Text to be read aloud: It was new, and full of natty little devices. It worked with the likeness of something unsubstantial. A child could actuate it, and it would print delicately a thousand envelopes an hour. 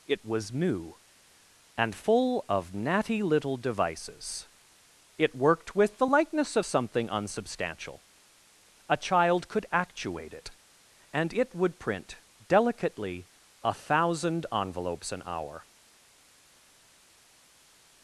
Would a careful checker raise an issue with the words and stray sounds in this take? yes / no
no